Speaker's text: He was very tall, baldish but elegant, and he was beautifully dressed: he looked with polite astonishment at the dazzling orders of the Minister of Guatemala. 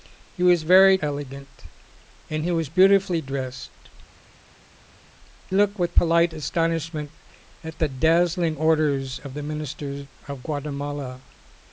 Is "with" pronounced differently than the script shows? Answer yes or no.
no